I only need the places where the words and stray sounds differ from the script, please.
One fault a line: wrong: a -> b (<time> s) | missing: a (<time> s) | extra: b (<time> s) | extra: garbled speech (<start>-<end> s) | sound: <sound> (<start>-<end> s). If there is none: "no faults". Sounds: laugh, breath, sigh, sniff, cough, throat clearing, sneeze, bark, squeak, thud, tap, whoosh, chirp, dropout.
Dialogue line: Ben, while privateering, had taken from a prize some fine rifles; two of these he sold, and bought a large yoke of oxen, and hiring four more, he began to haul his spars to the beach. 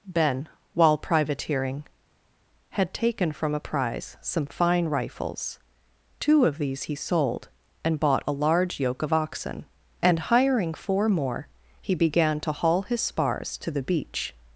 no faults